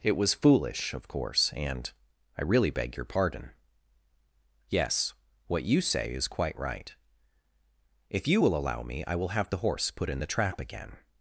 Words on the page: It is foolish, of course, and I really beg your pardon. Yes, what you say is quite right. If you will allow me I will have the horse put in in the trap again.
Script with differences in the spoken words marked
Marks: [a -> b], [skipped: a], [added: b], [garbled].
It [is -> was] foolish, of course, and I really beg your pardon. Yes, what you say is quite right. If you will allow me I will have the horse put in [skipped: in] the trap again.